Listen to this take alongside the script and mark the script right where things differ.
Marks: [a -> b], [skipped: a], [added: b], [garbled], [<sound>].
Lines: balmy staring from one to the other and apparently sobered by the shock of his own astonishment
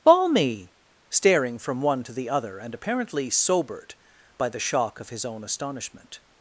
balmy staring from one to the other and apparently sobered by the shock of his own astonishment